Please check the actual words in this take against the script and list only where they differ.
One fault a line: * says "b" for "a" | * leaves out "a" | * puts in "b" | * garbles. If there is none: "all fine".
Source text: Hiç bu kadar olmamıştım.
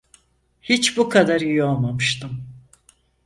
* puts in "iyi"